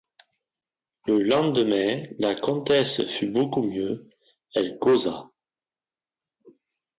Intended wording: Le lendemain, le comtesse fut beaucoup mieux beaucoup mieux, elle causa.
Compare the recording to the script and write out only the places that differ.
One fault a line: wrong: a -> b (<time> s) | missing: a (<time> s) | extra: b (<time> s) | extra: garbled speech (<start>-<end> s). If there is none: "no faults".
wrong: le -> la (2.2 s)
missing: beaucoup mieux (4.1 s)